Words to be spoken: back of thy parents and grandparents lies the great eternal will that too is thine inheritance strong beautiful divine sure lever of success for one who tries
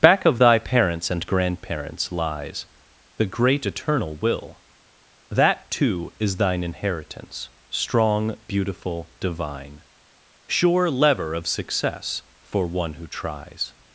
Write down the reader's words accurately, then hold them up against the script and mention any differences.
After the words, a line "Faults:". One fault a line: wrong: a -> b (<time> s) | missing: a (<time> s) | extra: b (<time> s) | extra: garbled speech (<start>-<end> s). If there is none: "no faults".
back of thy parents and grandparents lies the great eternal will that too is thine inheritance strong beautiful divine sure lever of success for one who tries
Faults:
no faults